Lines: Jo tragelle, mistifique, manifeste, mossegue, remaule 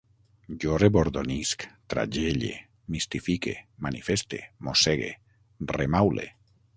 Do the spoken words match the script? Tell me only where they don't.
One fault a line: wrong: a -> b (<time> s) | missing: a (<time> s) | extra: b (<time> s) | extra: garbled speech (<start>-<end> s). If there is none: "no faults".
extra: rebordonisc (0.7 s)